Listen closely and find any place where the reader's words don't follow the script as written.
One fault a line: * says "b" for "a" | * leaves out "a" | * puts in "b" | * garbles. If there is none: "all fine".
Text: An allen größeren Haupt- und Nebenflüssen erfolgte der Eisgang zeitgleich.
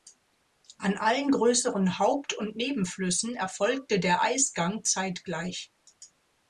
all fine